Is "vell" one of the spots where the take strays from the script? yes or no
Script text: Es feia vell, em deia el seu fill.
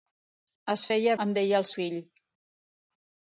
yes